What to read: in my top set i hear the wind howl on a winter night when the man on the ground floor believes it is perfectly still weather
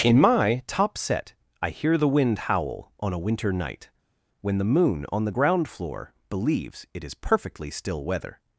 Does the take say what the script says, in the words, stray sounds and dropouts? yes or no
no